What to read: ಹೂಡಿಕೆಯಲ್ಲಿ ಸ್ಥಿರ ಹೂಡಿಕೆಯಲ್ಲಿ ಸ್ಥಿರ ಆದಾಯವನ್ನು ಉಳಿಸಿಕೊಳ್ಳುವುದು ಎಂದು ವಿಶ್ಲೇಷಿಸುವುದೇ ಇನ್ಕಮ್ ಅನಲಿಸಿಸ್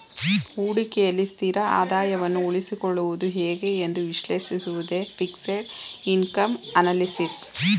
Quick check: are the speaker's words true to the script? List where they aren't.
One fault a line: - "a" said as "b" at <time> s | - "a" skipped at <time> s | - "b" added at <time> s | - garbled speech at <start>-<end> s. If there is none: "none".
- "ಹೂಡಿಕೆಯಲ್ಲಿ ಸ್ಥಿರ" skipped at 1.6 s
- "ಹೇಗೆ" added at 3.4 s
- "ಫಿಕ್ಸೆಡ್" added at 5.2 s